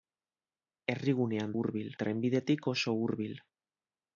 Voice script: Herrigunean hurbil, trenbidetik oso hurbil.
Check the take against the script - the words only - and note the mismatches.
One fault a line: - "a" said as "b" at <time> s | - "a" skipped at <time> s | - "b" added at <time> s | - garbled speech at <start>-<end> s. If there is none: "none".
none